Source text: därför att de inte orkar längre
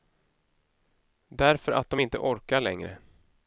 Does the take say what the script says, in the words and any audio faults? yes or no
yes